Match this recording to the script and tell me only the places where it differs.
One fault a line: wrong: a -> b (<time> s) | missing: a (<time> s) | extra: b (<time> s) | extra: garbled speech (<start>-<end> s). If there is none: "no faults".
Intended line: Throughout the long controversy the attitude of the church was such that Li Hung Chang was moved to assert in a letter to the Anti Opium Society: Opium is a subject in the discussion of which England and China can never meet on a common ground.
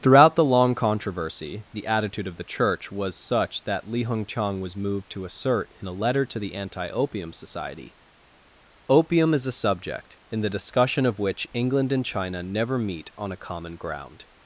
missing: can (12.4 s)